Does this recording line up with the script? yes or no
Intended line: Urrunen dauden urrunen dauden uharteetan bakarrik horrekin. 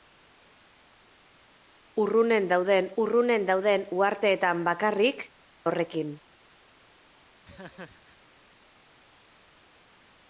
yes